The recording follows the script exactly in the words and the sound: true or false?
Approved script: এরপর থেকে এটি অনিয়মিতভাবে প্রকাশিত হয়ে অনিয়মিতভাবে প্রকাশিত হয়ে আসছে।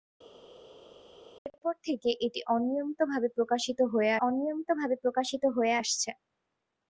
true